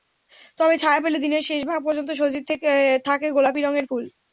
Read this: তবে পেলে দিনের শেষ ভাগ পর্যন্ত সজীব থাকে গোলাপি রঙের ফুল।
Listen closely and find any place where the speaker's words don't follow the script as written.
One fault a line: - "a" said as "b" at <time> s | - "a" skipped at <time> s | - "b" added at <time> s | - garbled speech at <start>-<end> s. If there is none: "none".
- "ছায়া" added at 0.8 s